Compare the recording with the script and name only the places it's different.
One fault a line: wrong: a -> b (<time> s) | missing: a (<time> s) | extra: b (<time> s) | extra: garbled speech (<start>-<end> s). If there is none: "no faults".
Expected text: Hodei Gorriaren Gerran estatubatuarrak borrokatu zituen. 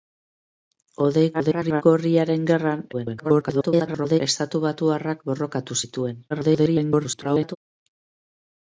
extra: garbled speech (1.3-1.8 s)
extra: garbled speech (2.9-4.2 s)
extra: garbled speech (6.3-7.6 s)